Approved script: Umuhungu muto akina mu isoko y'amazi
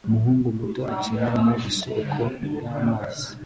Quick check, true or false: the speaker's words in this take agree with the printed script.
true